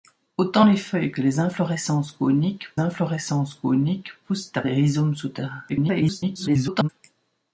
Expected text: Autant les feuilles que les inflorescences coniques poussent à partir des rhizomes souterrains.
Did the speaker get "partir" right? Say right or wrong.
wrong